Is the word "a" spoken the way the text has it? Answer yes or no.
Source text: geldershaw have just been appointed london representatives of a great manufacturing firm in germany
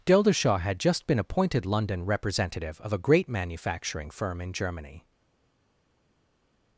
yes